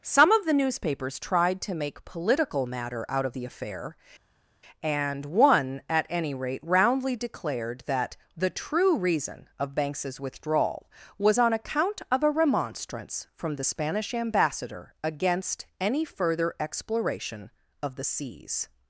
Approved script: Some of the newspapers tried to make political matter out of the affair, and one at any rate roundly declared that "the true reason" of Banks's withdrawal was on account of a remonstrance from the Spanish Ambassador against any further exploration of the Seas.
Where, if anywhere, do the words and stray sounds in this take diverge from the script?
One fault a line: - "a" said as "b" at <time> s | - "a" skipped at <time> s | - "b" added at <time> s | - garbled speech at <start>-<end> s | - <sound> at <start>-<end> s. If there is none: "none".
none